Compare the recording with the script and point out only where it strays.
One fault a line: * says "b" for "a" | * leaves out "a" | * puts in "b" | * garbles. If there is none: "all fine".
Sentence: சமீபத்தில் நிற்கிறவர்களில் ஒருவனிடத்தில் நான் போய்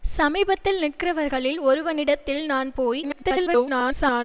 * garbles